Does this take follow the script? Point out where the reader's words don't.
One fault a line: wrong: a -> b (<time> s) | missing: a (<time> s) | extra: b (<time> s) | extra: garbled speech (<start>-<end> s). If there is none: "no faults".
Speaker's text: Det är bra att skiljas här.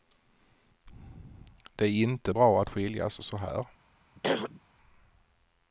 extra: inte (1.9 s)
extra: så (3.2 s)